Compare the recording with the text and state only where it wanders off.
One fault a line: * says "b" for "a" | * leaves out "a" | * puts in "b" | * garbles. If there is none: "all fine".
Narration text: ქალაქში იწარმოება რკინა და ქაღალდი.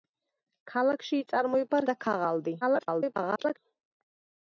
* leaves out "რკინა"
* garbles